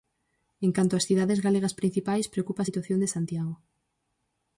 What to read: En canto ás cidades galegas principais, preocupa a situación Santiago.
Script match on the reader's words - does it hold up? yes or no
no